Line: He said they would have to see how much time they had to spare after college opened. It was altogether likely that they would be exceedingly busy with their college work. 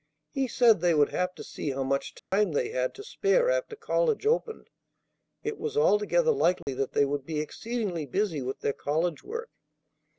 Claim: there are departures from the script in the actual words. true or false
false